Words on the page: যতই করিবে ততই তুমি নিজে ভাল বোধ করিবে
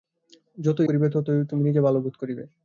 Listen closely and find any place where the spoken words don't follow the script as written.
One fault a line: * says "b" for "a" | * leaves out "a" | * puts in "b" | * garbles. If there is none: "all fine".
all fine